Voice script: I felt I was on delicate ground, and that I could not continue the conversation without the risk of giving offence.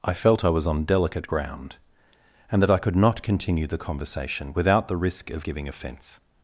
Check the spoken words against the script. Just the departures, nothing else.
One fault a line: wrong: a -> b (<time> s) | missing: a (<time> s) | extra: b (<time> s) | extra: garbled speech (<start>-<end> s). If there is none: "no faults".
no faults